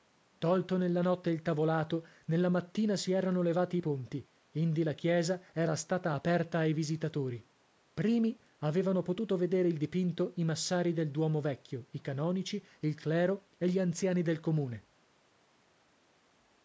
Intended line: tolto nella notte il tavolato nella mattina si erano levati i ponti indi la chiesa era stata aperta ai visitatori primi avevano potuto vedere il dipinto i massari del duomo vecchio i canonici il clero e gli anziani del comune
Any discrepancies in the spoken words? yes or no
no